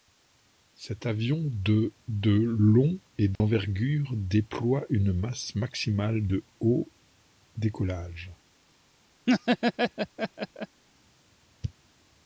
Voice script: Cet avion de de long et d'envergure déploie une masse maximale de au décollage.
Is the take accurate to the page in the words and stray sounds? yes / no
no